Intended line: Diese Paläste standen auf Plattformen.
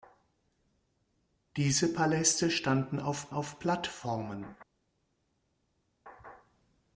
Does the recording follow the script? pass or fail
fail